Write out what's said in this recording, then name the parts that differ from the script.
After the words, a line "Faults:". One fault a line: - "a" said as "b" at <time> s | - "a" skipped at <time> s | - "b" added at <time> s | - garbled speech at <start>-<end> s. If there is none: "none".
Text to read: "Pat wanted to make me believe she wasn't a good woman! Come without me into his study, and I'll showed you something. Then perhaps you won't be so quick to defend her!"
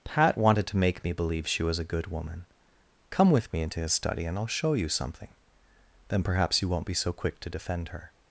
"Pat wanted to make me believe she was a good woman! Come with me into his study, and I'll show you something. Then perhaps you won't be so quick to defend her!"
Faults:
- "wasn't" said as "was" at 1.6 s
- "without" said as "with" at 3.3 s
- "showed" said as "show" at 4.5 s